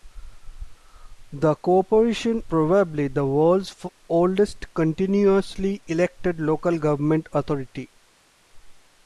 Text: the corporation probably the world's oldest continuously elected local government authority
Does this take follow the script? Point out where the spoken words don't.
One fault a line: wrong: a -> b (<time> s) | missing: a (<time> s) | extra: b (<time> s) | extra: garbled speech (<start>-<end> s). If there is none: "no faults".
no faults